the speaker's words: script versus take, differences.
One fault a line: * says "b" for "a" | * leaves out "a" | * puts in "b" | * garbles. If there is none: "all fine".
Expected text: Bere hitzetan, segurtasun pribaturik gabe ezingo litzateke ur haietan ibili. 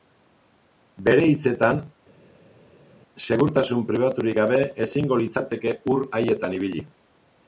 all fine